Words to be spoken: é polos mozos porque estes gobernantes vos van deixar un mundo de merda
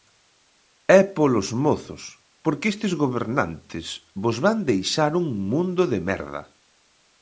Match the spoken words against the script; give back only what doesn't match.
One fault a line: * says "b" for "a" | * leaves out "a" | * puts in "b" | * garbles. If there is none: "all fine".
all fine